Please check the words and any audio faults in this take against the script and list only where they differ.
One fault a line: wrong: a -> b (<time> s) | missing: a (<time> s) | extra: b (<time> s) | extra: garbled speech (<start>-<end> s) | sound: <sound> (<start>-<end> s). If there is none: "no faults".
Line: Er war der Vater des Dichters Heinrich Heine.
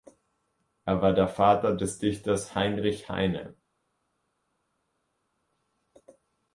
no faults